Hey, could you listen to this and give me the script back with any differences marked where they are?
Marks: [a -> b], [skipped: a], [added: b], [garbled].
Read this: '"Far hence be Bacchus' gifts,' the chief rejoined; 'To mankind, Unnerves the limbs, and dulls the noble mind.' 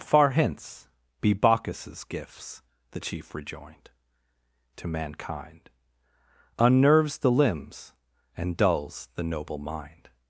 '"Far hence be Bacchus' gifts,' the chief rejoined; 'To mankind, Unnerves the limbs, and dulls the noble mind.'